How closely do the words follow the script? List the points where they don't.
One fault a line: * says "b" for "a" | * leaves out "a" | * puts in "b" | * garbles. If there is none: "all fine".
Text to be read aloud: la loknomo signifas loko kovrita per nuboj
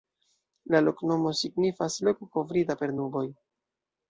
all fine